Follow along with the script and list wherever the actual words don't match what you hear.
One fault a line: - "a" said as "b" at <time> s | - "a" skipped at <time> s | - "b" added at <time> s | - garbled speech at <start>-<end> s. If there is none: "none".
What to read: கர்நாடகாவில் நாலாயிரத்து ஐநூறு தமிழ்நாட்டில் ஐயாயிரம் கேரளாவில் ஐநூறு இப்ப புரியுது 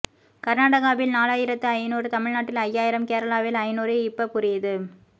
none